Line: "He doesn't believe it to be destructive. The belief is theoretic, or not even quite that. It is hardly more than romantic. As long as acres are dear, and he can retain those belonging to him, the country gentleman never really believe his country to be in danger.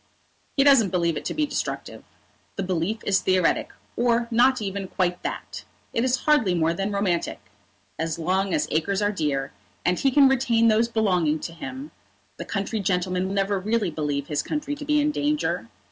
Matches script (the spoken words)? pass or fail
pass